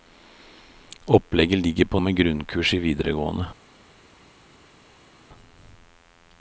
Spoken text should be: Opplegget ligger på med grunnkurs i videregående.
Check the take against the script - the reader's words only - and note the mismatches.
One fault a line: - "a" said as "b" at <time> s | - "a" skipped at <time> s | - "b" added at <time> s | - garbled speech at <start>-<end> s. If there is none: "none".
none